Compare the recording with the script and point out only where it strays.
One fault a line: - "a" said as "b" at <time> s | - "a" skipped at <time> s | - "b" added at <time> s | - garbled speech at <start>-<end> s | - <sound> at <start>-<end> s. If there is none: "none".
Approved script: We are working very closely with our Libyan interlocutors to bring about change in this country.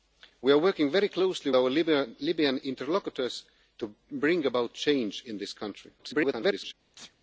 - "with" skipped at 1.5 s
- garbled speech at 6.0-6.7 s
- sneeze at 6.9-7.2 s